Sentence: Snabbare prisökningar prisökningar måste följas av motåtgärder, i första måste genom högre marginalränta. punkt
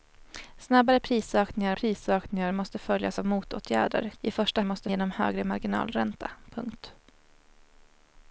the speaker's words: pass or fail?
pass